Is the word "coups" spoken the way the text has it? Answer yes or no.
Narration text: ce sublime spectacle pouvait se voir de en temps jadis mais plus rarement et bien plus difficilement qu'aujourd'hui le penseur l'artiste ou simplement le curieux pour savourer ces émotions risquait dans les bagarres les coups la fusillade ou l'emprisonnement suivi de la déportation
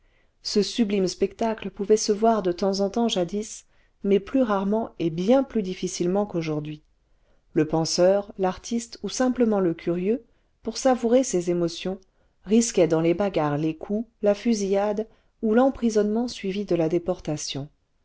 yes